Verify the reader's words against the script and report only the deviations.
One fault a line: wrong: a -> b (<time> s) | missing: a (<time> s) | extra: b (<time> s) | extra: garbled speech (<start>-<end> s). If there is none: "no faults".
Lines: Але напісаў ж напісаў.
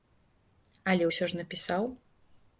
wrong: напісаў -> ўсё (1.1 s)